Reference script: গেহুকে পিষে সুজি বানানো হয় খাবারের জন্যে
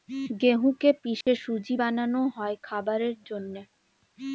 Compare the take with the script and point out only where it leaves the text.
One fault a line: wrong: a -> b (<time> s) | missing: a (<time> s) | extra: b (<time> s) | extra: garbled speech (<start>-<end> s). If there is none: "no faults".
no faults